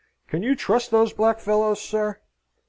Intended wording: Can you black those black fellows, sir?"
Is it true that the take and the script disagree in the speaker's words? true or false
true